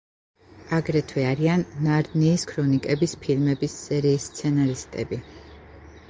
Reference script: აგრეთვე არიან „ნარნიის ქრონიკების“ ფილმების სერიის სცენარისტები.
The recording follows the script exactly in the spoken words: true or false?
true